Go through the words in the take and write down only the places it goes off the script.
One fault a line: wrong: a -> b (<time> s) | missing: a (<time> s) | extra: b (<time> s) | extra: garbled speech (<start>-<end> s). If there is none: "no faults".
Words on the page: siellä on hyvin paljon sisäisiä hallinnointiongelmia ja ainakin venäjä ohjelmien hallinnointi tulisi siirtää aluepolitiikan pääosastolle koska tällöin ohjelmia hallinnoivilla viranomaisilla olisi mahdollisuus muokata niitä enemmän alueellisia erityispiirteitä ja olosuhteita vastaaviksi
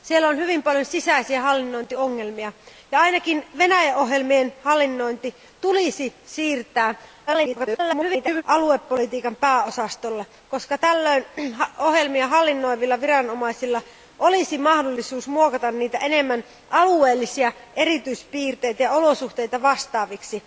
extra: garbled speech (7.3-8.4 s)